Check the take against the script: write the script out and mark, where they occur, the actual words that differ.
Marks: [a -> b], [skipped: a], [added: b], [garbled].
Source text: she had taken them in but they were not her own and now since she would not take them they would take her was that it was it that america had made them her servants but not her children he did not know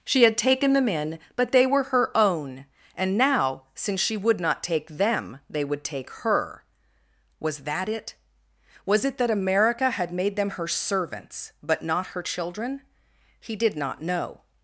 she had taken them in but they were [skipped: not] her own and now since she would not take them they would take her was that it was it that america had made them her servants but not her children he did not know